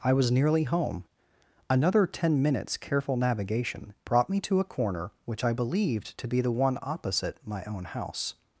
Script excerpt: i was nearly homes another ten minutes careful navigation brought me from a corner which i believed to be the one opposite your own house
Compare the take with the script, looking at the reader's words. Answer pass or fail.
fail